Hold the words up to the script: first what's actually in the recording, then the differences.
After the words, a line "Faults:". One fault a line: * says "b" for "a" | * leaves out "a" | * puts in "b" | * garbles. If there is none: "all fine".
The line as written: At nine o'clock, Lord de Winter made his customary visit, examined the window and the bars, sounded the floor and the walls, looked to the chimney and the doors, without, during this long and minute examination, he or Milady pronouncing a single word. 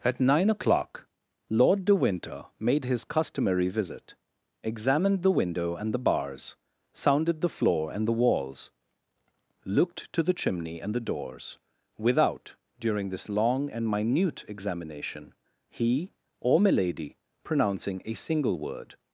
At nine o'clock, Lord de Winter made his customary visit, examined the window and the bars, sounded the floor and the walls, looked to the chimney and the doors, without, during this long and minute examination, he or Milady pronouncing a single word.
Faults:
all fine